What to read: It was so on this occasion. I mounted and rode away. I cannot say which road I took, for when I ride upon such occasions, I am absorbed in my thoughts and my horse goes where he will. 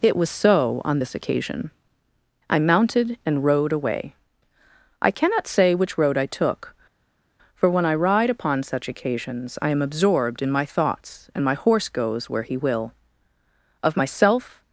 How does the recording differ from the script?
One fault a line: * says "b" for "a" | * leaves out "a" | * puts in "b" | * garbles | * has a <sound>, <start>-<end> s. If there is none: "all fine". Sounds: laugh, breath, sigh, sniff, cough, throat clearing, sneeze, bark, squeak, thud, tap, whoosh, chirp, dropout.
* puts in "Of myself"